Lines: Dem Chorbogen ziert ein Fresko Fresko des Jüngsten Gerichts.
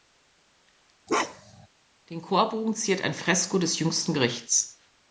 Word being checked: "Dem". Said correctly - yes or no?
no